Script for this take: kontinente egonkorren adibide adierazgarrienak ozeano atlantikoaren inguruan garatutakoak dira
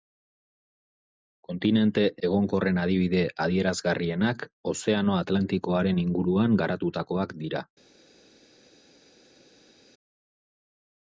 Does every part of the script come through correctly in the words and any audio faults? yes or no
yes